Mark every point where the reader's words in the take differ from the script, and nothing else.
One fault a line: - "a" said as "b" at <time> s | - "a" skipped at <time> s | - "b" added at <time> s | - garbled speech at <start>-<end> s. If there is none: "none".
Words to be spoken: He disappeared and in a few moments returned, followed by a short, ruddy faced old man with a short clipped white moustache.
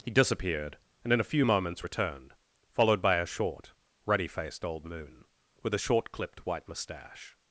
- "man" said as "moon" at 4.8 s